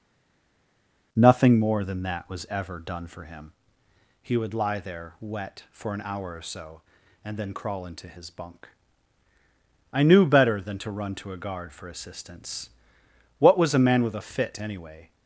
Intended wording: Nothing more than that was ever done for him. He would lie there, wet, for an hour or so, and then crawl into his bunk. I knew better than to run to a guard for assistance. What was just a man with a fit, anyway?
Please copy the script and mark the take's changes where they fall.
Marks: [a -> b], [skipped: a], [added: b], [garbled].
Nothing more than that was ever done for him. He would lie there, wet, for an hour or so, and then crawl into his bunk. I knew better than to run to a guard for assistance. What was [skipped: just] a man with a fit, anyway?